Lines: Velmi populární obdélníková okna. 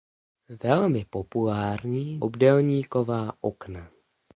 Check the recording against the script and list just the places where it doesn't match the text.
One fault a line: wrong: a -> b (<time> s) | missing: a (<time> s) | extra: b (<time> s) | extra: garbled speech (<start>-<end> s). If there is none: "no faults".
no faults